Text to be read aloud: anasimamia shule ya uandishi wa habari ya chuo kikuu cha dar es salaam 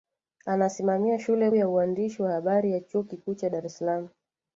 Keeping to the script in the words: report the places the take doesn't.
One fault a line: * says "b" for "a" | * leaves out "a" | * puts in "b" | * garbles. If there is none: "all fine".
all fine